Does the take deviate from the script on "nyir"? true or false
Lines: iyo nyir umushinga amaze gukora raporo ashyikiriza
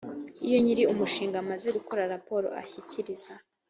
false